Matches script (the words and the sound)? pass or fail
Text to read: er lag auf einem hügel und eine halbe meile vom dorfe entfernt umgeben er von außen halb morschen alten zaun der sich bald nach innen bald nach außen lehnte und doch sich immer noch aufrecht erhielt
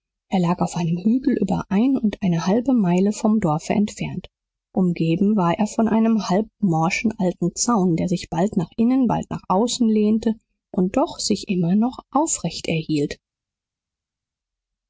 fail